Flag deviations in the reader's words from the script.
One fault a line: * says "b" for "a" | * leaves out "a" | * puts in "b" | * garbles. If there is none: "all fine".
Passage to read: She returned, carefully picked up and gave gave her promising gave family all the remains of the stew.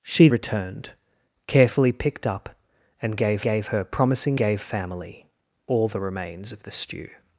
all fine